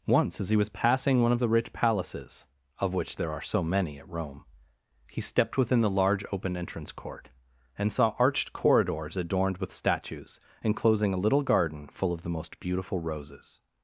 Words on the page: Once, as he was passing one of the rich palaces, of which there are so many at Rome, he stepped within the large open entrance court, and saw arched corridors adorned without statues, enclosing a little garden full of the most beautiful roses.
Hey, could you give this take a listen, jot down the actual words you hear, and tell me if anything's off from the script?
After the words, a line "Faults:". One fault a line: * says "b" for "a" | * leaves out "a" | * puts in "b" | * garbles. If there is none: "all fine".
Once, as he was passing one of the rich palaces, of which there are so many at Rome, he stepped within the large open entrance court, and saw arched corridors adorned with statues, enclosing a little garden full of the most beautiful roses.
Faults:
* says "with" for "without"